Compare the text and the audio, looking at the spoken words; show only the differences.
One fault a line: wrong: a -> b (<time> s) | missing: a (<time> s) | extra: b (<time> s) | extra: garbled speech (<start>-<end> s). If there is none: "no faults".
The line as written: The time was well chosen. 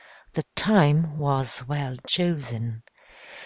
no faults